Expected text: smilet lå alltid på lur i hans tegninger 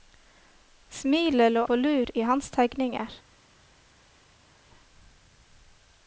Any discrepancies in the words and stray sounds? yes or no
yes